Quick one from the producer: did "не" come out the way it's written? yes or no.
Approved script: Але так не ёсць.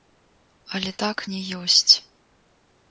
yes